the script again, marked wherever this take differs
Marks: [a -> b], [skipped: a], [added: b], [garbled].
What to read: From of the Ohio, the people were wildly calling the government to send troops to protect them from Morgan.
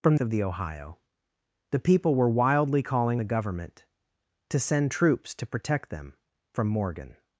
From of the Ohio, the people were wildly calling the government to send troops to protect them from Morgan.